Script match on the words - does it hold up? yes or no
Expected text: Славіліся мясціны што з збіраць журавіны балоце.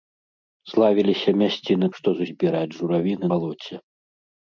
yes